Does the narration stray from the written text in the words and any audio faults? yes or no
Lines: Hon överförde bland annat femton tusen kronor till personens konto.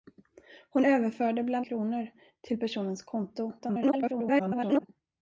yes